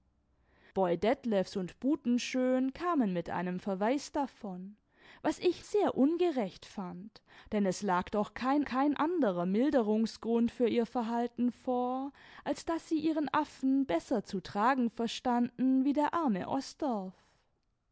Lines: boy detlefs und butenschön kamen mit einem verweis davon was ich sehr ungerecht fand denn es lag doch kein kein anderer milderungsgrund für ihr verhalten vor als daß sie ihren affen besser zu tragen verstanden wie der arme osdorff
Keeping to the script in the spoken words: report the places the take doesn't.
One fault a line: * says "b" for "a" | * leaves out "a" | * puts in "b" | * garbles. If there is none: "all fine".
all fine